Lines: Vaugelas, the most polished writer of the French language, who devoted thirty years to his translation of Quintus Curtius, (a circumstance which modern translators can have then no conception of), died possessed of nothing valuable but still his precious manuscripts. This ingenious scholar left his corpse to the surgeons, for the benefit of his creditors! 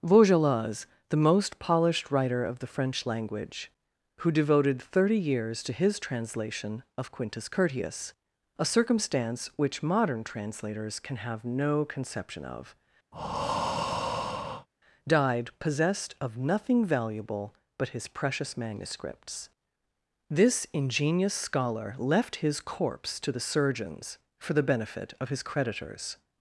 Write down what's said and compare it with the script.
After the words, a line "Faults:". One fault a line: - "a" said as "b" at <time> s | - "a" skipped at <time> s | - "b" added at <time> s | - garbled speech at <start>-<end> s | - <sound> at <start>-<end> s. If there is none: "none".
Vaugelas, the most polished writer of the French language, who devoted thirty years to his translation of Quintus Curtius, (a circumstance which modern translators can have no conception of), died possessed of nothing valuable but his precious manuscripts. This ingenious scholar left his corpse to the surgeons, for the benefit of his creditors!
Faults:
- "then" skipped at 11.4 s
- breath at 13.1-14.7 s
- "still" skipped at 18.0 s